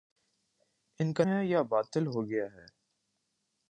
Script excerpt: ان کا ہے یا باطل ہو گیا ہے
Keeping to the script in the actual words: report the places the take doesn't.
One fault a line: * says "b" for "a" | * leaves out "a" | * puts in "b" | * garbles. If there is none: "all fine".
all fine